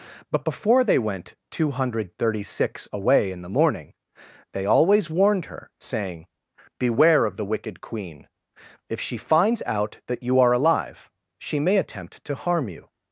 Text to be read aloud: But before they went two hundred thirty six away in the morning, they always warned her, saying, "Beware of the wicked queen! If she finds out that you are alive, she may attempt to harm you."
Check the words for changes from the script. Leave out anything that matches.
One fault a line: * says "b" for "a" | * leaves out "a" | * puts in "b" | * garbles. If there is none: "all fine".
all fine